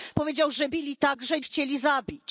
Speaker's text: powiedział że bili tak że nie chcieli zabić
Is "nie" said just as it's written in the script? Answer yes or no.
no